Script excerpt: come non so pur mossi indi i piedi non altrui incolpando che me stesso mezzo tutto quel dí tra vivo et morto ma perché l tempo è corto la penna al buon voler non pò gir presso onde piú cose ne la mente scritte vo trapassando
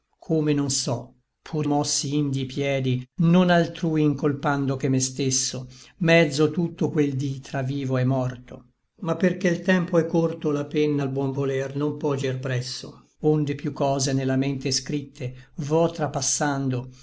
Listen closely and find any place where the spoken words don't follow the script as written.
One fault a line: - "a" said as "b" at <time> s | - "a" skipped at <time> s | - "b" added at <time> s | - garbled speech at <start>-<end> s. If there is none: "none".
none